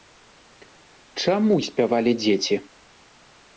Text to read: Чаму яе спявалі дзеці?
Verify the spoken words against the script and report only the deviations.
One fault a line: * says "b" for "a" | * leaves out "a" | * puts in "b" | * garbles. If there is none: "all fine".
* leaves out "яе"